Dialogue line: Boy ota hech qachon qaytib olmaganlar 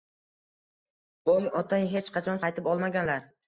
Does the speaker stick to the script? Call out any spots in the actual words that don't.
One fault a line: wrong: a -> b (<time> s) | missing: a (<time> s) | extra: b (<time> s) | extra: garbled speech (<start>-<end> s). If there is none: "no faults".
no faults